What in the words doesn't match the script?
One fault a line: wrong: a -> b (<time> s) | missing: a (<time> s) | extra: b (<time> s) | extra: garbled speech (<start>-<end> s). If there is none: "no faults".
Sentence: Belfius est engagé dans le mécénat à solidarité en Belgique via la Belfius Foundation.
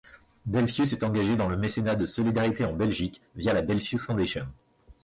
wrong: à -> de (1.9 s)